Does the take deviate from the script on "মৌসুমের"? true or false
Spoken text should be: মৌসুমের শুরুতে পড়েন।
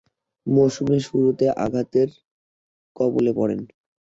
false